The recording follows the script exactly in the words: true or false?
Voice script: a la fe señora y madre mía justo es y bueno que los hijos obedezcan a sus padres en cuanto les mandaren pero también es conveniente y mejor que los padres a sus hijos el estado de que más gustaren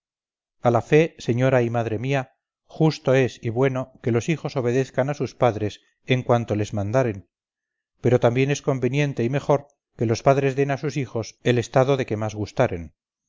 false